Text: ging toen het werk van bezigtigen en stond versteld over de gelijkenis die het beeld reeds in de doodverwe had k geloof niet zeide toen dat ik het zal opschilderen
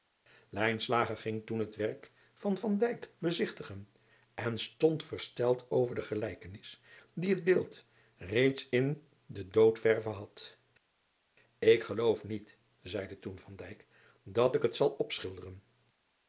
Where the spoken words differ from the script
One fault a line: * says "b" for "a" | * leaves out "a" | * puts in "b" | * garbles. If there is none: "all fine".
all fine